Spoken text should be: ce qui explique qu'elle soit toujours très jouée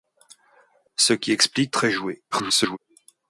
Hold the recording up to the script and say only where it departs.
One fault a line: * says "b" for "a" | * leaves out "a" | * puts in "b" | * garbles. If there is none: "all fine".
* leaves out "qu'elle soit toujours"
* garbles